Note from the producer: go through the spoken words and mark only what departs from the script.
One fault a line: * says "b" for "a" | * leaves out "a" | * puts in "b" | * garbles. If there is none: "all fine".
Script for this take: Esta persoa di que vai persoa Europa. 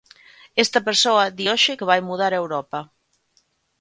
* puts in "hoxe"
* says "mudar" for "persoa"